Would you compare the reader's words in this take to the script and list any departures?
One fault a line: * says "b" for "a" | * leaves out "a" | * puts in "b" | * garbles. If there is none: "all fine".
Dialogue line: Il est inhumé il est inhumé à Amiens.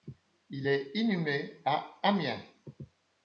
* leaves out "il est inhumé"